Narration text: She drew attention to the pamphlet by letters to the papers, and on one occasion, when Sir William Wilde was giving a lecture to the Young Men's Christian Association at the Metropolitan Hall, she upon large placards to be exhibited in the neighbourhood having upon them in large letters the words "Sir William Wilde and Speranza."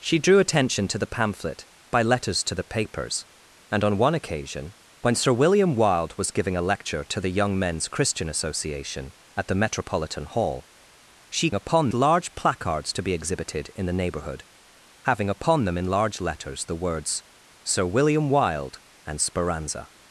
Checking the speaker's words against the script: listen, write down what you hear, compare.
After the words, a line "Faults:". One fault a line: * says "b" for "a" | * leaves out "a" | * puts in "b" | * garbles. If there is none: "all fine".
She drew attention to the pamphlet by letters to the papers, and on one occasion, when Sir William Wilde was giving a lecture to the Young Men's Christian Association at the Metropolitan Hall, she upon large placards to be exhibited in the neighbourhood having upon them in large letters the words "Sir William Wilde and Speranza."
Faults:
all fine